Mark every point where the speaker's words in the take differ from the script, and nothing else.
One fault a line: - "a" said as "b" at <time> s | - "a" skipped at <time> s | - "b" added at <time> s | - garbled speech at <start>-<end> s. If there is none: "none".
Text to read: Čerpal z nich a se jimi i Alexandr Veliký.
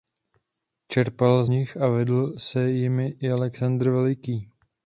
- "vedl" added at 1.9 s